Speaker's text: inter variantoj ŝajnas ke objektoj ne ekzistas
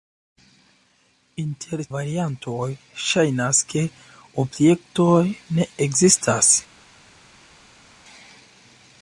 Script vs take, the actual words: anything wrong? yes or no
no